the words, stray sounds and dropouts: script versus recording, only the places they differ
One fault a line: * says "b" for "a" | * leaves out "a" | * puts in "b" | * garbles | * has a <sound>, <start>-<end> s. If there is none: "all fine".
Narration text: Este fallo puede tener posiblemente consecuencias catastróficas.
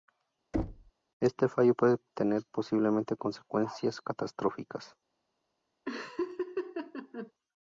* has a thud, 0.5-0.9 s
* has a laugh, 5.9-7.3 s